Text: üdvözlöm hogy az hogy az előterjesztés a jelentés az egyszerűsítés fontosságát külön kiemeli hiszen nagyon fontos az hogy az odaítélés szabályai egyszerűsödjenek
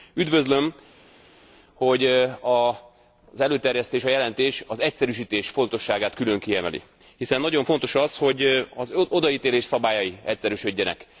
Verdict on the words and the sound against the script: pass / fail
fail